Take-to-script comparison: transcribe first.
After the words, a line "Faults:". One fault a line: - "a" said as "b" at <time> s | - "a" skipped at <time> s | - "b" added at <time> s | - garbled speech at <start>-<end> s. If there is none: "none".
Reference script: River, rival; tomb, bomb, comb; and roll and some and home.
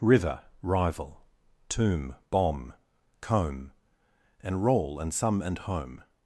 River, rival; tomb, bomb, comb; and roll and some and home.
Faults:
none